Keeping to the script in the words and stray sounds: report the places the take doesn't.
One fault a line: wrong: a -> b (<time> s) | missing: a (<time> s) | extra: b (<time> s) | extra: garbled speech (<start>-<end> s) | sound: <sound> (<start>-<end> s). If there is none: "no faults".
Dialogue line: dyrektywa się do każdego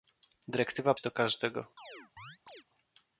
sound: chirp (1.8-2.6 s)